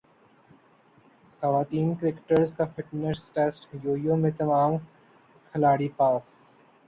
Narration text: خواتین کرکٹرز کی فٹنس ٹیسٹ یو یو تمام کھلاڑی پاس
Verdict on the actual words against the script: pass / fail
fail